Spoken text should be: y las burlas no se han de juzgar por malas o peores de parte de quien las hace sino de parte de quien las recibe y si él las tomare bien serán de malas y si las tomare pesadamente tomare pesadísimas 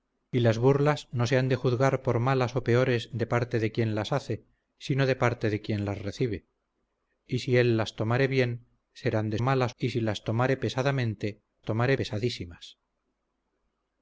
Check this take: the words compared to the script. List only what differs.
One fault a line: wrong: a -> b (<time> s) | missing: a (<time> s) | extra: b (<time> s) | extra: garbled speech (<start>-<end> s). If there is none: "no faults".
no faults